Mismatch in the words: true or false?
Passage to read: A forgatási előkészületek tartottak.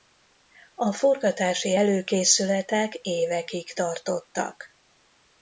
true